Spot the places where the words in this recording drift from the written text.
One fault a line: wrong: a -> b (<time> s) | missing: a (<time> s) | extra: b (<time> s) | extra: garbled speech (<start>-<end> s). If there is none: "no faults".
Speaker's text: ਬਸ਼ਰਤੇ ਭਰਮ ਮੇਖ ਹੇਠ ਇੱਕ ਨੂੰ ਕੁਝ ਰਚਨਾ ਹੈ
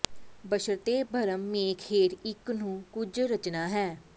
no faults